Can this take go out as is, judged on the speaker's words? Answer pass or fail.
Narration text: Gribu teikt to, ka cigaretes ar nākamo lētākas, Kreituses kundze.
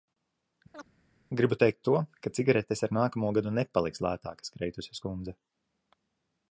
fail